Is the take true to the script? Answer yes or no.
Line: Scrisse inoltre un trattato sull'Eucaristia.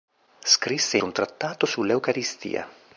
no